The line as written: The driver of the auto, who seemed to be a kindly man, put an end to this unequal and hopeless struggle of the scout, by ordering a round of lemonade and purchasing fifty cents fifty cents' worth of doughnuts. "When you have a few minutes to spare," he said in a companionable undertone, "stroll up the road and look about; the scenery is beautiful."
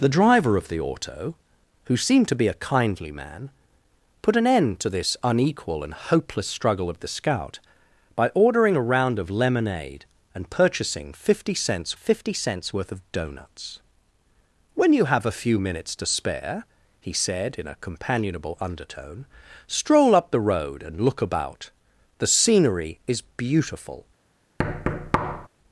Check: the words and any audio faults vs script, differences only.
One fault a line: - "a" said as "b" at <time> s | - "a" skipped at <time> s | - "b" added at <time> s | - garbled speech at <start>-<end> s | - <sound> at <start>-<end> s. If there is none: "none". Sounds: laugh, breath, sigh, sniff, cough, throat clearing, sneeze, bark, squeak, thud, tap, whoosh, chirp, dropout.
- thud at 24.6-25.5 s